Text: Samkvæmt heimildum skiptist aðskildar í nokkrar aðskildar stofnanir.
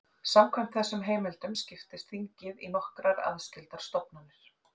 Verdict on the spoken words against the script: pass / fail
fail